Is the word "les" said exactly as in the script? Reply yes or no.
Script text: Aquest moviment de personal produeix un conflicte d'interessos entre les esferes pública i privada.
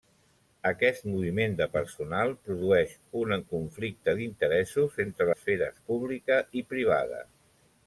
no